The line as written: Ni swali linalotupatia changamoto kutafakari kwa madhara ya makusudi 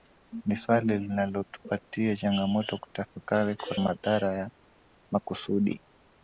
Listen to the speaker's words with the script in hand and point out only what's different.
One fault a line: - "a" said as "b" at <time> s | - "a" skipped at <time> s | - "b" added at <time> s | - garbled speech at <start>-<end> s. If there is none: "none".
none